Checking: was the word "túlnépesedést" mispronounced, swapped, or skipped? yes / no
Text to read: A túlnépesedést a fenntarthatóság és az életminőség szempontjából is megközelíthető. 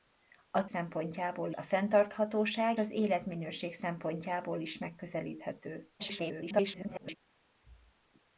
yes